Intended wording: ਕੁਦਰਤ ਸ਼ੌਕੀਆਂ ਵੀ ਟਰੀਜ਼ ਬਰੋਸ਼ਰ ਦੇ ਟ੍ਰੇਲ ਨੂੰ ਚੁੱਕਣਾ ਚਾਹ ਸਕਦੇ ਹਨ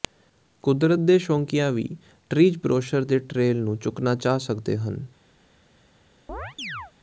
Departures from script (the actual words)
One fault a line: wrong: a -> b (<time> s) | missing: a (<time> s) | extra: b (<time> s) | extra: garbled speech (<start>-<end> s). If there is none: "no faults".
extra: ਦੇ (1.0 s)